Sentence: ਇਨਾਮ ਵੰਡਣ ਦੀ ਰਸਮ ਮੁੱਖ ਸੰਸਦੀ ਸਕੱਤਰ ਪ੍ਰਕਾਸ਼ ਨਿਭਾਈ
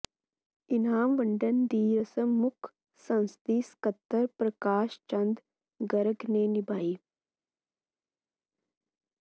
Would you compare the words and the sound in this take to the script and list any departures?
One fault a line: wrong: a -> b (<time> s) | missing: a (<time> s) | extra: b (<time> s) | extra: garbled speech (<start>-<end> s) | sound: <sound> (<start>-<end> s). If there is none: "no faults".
extra: ਚੰਦ ਗਰਗ ਨੇ (5.1 s)